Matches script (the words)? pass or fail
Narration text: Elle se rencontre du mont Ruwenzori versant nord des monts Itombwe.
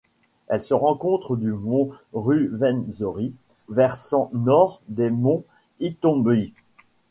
pass